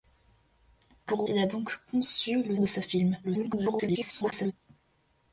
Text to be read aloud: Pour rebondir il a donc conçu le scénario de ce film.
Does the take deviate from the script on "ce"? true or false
false